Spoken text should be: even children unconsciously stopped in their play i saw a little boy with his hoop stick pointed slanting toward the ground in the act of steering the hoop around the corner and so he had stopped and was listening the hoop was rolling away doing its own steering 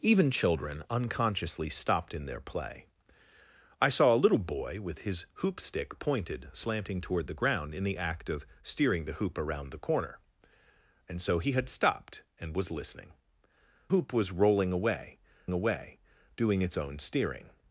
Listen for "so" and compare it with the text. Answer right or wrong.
right